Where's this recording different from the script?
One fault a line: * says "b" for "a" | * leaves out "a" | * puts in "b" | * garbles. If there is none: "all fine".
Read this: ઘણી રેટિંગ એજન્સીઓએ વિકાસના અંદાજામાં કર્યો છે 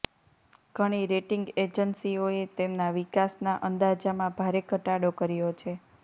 * puts in "તેમના"
* puts in "ભારે ઘટાડો"